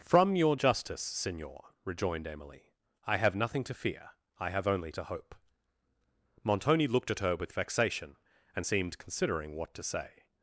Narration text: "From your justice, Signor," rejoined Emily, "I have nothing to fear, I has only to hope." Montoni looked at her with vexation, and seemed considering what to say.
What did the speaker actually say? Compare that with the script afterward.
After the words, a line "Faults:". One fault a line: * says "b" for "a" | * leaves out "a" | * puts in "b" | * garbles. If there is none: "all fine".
"From your justice, Signor," rejoined Emily, "I have nothing to fear, I have only to hope." Montoni looked at her with vexation, and seemed considering what to say.
Faults:
* says "have" for "has"